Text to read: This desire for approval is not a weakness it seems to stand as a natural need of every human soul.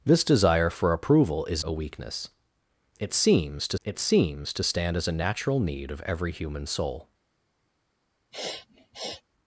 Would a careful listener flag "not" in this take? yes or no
yes